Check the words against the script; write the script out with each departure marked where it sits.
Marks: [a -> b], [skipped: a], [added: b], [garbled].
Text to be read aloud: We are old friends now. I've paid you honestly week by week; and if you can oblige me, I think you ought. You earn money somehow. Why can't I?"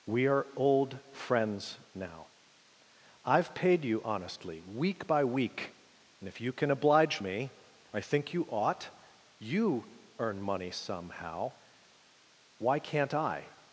We are old friends now. I've paid you honestly week by week; and if you can oblige me, I think you ought. You earn money somehow. Why can't I?"